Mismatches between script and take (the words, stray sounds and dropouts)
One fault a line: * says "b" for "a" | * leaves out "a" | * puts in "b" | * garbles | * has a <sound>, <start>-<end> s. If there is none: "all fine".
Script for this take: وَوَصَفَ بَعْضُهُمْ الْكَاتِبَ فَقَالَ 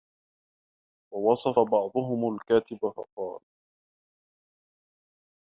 all fine